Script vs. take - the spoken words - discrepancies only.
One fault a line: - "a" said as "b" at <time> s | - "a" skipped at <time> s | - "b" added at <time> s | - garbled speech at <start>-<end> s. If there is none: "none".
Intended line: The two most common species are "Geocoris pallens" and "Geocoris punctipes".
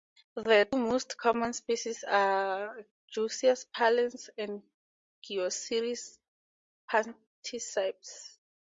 - "two" skipped at 0.7 s